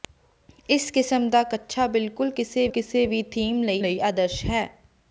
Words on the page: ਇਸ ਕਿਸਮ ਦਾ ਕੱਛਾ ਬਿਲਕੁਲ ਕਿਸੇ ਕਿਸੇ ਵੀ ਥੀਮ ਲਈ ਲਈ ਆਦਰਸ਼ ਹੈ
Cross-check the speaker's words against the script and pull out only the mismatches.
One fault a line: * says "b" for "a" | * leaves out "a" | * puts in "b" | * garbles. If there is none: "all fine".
all fine